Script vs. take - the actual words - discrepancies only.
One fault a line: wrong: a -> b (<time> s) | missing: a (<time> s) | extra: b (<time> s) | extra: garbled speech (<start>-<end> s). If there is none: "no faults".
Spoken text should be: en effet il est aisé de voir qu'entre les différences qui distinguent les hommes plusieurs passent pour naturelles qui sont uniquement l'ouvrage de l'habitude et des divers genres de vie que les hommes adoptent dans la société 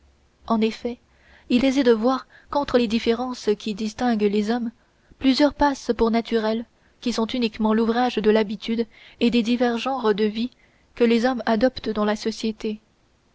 missing: est (1.6 s)